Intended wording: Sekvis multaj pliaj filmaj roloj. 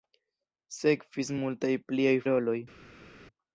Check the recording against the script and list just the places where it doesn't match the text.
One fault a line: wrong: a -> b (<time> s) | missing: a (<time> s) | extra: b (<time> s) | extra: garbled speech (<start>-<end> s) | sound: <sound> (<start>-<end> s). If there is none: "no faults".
missing: filmaj (2.2 s)